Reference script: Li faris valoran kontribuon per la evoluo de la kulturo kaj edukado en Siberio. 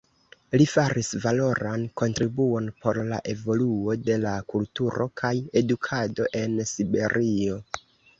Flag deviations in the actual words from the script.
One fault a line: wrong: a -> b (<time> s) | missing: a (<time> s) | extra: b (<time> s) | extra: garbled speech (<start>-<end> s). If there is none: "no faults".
wrong: per -> por (2.9 s)